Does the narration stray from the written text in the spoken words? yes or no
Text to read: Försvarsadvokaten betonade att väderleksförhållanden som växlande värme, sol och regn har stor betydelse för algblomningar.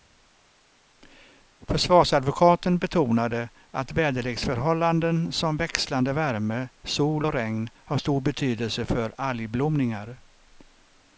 no